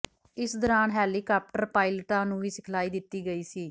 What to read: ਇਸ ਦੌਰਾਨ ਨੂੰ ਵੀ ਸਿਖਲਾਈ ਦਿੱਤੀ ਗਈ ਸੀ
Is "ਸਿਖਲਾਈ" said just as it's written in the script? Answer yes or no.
yes